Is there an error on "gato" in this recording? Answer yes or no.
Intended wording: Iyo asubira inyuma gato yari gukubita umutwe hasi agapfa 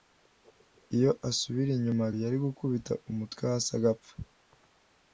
yes